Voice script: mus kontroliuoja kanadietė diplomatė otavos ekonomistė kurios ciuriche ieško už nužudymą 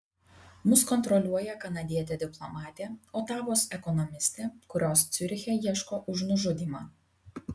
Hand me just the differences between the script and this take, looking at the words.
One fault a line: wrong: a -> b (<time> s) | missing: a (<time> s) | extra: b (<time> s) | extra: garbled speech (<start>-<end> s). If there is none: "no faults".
no faults